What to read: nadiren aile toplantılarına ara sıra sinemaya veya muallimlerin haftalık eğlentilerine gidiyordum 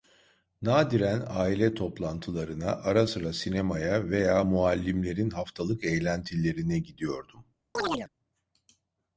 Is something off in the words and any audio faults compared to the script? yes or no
yes